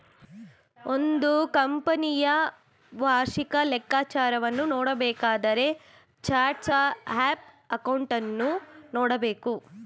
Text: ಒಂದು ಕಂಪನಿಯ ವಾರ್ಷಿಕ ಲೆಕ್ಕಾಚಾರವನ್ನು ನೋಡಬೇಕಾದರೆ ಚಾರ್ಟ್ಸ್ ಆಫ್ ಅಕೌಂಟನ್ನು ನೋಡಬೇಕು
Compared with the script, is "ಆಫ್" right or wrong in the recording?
right